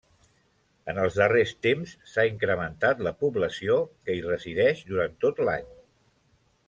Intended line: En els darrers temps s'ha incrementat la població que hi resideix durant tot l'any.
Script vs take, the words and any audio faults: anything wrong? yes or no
no